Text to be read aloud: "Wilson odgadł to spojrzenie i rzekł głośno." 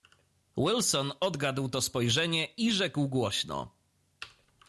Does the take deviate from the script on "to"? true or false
false